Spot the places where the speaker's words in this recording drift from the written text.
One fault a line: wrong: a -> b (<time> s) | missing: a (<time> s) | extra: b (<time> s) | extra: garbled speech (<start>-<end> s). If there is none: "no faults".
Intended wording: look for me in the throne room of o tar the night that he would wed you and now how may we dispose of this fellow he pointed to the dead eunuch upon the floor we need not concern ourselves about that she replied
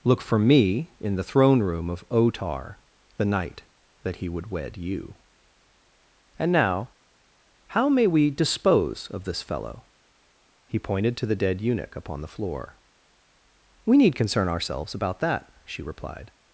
missing: not (14.2 s)